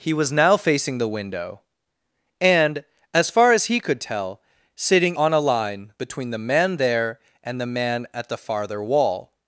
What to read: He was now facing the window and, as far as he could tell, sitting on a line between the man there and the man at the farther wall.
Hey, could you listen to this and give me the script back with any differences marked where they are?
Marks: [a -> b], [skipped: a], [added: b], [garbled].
He was now facing the window and, as far as he could tell, sitting on a line between the man there and the man at the farther wall.